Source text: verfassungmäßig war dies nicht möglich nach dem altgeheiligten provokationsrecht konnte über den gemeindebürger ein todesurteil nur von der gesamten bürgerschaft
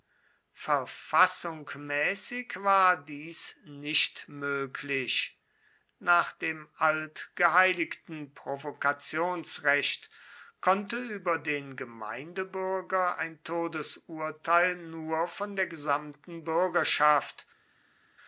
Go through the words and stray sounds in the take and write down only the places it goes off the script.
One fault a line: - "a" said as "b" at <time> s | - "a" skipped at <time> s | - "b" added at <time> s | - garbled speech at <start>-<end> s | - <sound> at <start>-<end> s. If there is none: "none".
none